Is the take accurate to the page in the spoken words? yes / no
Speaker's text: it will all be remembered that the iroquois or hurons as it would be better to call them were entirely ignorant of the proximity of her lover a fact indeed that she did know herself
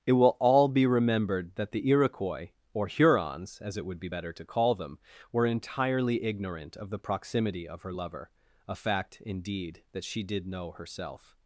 yes